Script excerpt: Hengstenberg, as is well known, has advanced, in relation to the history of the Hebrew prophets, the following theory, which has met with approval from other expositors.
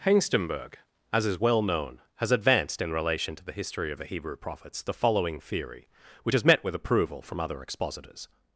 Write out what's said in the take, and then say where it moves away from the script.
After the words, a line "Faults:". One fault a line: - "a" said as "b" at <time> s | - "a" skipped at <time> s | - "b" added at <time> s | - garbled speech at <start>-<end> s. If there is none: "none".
Hengstenberg, as is well known, has advanced, in relation to the history of the Hebrew prophets, the following theory, which has met with approval from other expositors.
Faults:
none